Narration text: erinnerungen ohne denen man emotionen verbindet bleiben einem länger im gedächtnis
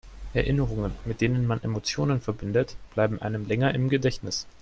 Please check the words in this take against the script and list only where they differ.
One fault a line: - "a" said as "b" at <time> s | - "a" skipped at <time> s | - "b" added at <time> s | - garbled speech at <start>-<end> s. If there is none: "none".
- "ohne" said as "mit" at 1.1 s